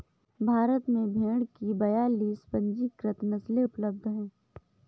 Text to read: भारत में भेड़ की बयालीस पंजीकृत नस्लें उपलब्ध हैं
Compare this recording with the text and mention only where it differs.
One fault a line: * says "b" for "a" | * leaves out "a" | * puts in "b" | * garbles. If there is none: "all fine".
all fine